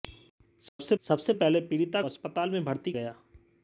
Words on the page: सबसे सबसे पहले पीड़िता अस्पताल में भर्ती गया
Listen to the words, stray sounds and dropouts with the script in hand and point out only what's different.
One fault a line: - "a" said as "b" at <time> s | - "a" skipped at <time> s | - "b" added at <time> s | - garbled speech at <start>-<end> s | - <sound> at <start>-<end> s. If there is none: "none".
- dropout at 0.7-0.8 s